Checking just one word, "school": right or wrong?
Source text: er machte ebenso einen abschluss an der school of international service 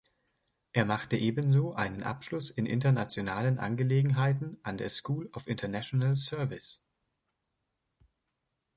right